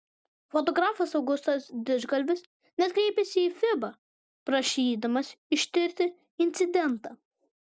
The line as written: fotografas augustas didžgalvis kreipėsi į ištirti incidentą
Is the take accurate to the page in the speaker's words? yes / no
no